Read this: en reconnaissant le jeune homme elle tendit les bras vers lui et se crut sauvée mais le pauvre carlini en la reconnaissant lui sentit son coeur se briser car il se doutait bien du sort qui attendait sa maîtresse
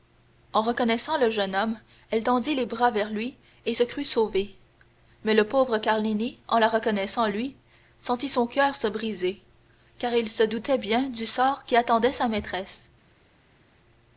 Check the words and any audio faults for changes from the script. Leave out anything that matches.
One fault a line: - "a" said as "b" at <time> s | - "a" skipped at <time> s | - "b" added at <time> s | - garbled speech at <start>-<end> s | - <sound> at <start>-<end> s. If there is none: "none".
none